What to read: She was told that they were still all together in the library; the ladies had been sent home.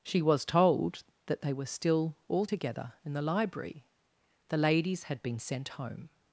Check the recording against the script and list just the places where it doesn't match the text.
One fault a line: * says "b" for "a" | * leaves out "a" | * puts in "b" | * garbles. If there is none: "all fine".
all fine